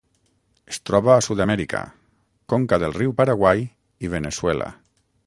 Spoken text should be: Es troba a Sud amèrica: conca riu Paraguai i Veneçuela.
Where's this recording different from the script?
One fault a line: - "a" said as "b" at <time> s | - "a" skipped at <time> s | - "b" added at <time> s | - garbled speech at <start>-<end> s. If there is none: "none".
- "del" added at 2.8 s